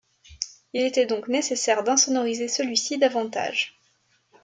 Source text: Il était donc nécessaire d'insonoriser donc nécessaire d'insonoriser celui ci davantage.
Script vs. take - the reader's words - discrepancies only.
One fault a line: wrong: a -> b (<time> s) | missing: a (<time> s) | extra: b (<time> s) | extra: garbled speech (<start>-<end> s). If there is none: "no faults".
missing: donc nécessaire d'insonoriser (2.5 s)